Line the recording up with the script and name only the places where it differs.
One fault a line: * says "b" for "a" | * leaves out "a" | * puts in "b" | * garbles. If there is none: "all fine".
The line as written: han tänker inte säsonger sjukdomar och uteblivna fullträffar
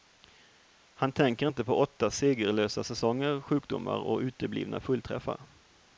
* puts in "på åtta segerlösa"